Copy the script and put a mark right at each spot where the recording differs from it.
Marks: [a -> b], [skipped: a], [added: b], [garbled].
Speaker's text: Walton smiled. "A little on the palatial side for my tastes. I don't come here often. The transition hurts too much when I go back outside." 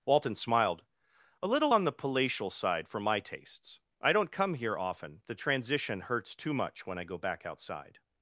Walton smiled. "A little on the palatial side for my tastes. I don't come here often. The transition hurts too much when I go back outside."